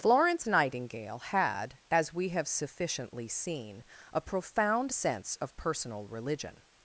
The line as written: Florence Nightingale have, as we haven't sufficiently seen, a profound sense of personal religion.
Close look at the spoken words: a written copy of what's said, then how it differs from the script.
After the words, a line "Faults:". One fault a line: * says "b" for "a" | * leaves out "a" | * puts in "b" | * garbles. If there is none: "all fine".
Florence Nightingale had, as we have sufficiently seen, a profound sense of personal religion.
Faults:
* says "had" for "have"
* says "have" for "haven't"